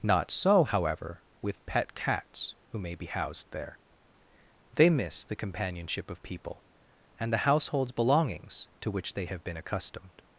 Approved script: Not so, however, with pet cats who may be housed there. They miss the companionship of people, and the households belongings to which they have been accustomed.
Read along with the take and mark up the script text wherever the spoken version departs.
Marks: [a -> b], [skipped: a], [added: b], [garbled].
Not so, however, with pet cats who may be housed there. They miss the companionship of people, and the households belongings to which they have been accustomed.